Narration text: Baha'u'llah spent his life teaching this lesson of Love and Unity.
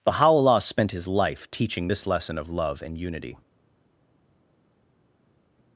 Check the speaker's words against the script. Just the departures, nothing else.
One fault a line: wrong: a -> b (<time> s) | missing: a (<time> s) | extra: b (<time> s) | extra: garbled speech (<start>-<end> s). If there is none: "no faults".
no faults